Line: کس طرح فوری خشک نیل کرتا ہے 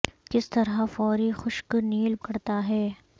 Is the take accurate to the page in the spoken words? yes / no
yes